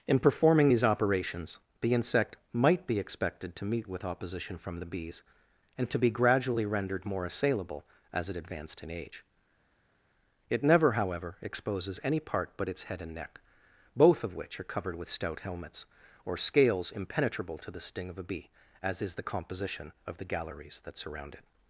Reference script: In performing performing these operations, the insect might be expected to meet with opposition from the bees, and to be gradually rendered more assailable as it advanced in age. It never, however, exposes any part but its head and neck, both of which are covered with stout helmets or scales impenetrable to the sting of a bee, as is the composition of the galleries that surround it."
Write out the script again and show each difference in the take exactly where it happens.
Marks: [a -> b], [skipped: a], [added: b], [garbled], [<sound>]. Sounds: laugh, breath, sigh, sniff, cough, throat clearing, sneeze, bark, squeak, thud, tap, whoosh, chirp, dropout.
In performing [skipped: performing] these operations, the insect might be expected to meet with opposition from the bees, and to be gradually rendered more assailable as it advanced in age. It never, however, exposes any part but its head and neck, both of which are covered with stout helmets or scales impenetrable to the sting of a bee, as is the composition of the galleries that surround it."